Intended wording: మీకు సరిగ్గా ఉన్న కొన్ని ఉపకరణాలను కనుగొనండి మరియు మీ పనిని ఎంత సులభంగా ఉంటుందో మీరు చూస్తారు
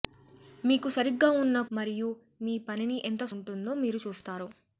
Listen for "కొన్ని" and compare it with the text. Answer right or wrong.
wrong